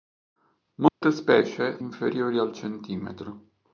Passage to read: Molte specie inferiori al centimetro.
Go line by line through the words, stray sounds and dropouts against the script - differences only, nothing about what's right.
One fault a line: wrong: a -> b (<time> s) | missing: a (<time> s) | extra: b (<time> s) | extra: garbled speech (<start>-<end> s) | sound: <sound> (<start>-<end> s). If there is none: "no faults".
sound: dropout (0.9-1.0 s)